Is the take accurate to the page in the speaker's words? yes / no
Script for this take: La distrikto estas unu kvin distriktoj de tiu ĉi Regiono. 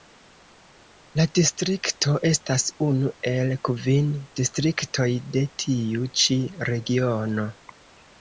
no